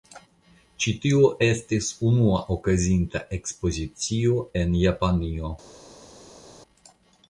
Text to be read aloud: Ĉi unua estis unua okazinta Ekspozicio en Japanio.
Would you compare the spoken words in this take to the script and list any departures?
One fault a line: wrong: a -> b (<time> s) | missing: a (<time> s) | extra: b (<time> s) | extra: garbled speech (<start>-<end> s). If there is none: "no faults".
wrong: unua -> tio (1.0 s)